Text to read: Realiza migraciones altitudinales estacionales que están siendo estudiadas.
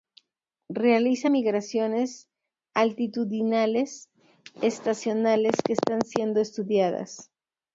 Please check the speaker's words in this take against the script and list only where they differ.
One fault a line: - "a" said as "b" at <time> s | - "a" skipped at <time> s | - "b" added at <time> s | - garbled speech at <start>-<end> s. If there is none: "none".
none